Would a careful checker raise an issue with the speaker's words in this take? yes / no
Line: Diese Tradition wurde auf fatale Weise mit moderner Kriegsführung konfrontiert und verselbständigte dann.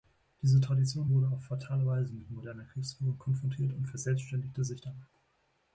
yes